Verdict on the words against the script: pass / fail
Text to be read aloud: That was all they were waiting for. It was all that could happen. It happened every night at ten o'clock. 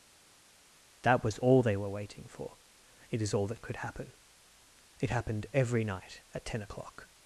fail